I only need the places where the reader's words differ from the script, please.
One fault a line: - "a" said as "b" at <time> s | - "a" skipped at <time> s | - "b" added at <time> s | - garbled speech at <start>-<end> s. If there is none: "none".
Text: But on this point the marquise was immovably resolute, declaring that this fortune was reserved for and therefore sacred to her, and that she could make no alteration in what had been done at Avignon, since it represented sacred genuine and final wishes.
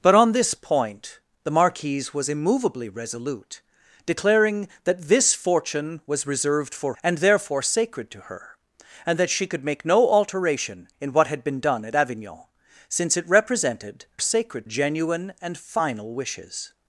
none